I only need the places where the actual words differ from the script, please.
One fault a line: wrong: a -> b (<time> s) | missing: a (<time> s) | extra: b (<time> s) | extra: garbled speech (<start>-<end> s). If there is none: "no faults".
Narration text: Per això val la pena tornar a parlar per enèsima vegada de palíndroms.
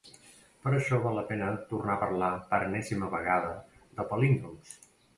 no faults